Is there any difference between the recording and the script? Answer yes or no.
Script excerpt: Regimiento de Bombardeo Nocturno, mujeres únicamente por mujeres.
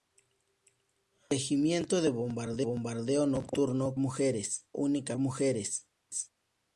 no